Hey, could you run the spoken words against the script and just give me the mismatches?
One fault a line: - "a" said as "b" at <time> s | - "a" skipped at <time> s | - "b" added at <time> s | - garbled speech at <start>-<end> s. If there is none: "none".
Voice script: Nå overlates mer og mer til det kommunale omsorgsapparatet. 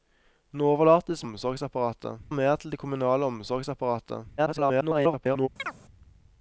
- "mer" said as "omsorgsapparatet" at 1.3 s
- garbled speech at 4.4-5.5 s